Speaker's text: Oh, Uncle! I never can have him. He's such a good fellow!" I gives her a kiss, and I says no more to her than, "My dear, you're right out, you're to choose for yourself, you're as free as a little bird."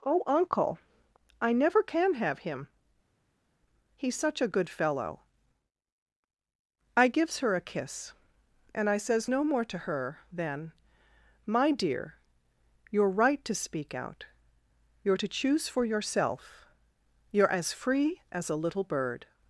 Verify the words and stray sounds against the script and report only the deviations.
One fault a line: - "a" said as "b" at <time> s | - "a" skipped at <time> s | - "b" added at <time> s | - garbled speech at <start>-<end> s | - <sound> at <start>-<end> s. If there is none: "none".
- "to speak" added at 13.4 s